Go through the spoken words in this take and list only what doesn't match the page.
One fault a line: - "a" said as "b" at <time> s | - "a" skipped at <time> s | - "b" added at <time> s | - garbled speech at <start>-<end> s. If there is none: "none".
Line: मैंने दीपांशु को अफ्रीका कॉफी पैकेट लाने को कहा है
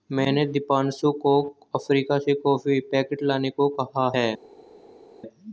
- "से" added at 2.2 s